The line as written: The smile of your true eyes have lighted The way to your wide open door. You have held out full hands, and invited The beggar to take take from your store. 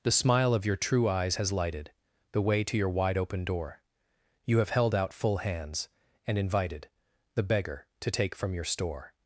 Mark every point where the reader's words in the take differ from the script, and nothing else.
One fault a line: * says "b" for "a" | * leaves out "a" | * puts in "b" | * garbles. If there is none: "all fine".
* says "has" for "have"
* leaves out "take"